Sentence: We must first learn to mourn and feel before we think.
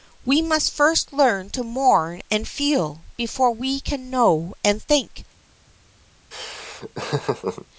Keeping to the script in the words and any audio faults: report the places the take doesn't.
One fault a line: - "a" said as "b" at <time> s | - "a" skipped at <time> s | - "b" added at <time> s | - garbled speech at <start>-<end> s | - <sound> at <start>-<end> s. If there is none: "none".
- "can know and" added at 3.8 s
- laugh at 6.3-7.7 s